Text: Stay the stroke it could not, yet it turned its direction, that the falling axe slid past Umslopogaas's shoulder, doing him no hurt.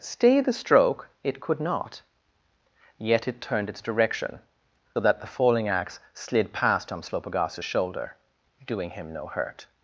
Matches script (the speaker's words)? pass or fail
pass